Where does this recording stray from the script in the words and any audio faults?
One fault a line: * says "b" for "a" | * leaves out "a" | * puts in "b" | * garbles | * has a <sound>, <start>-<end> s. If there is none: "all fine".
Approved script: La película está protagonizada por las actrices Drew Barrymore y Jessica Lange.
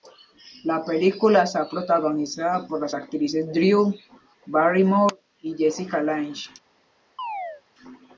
* has a chirp, 7.2-7.6 s